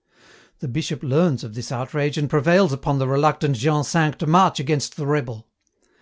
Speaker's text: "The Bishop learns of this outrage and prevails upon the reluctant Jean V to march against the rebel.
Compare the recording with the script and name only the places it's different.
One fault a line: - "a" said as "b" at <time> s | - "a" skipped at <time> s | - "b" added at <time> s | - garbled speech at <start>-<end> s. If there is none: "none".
none